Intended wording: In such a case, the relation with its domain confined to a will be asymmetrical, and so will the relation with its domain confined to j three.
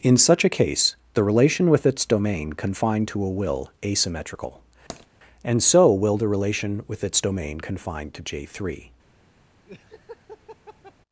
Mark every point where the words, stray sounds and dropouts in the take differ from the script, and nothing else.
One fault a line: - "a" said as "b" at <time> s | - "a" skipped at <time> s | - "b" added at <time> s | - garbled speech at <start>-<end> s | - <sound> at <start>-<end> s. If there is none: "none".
- "be" skipped at 3.7 s
- tap at 4.9-5.1 s
- laugh at 9.7-10.9 s